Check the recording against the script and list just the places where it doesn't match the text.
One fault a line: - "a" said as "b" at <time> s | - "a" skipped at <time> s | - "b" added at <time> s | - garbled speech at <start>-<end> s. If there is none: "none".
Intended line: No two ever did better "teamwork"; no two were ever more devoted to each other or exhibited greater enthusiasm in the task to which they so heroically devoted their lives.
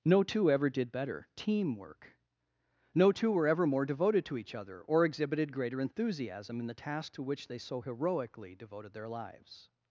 none